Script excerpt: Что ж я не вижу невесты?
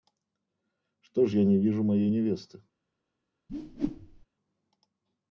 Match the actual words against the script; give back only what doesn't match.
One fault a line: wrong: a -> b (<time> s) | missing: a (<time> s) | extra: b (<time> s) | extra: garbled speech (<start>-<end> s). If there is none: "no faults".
extra: моей (1.8 s)